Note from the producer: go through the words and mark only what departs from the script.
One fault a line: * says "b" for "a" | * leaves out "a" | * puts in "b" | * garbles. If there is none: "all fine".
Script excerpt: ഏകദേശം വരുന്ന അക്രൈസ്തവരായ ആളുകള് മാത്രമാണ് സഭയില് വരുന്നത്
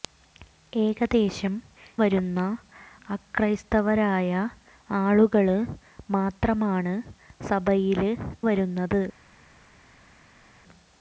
all fine